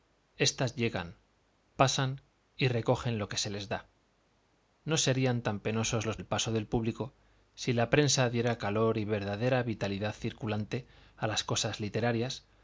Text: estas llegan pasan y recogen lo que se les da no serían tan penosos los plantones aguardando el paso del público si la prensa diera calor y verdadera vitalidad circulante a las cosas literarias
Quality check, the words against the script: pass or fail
fail